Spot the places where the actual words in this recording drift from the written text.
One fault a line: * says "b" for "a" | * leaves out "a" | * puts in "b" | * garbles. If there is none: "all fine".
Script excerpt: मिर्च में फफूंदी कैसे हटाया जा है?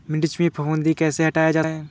all fine